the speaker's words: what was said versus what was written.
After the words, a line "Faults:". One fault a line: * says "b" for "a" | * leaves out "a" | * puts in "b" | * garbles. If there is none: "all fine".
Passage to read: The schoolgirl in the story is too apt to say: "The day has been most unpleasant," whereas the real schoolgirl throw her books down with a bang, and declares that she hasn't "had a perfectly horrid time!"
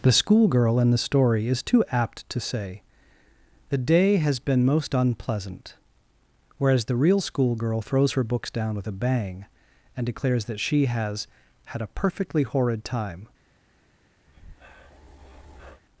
The schoolgirl in the story is too apt to say: "The day has been most unpleasant," whereas the real schoolgirl throws her books down with a bang, and declares that she has "had a perfectly horrid time!"
Faults:
* says "throws" for "throw"
* says "has" for "hasn't"